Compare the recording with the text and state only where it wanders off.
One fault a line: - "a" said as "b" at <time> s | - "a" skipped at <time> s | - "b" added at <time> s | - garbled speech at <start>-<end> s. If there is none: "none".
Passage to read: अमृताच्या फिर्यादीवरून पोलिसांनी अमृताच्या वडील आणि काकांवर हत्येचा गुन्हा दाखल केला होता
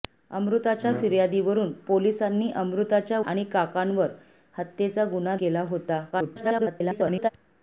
- "वडील" skipped at 3.2 s
- "दाखल" skipped at 5.3 s
- garbled speech at 6.1-7.3 s